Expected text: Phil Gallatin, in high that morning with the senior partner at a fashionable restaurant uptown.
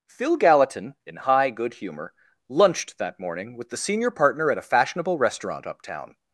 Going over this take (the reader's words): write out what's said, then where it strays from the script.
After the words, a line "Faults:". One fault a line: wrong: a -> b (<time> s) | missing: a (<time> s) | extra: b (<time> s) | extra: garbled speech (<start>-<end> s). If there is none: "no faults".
Phil Gallatin, in high good humor, lunched that morning with the senior partner at a fashionable restaurant uptown.
Faults:
extra: good humor lunched (1.5 s)